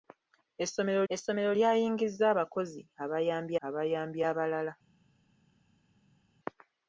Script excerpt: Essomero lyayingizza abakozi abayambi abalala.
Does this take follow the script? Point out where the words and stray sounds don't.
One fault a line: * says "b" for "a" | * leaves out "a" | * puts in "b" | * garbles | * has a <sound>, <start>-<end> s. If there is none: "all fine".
* puts in "essomero"
* puts in "abayambi"